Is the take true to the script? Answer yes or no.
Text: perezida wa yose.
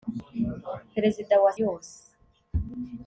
yes